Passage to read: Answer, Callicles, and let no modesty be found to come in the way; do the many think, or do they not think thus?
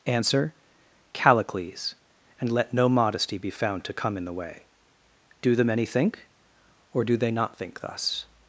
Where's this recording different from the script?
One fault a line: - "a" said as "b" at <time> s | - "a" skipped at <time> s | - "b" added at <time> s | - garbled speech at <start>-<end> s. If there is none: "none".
none